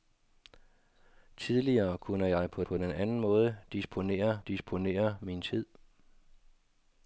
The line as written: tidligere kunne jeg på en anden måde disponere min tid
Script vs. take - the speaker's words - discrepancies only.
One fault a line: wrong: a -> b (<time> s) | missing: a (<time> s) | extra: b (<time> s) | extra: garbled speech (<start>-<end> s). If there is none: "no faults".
extra: på (2.6 s)
extra: disponere (4.5 s)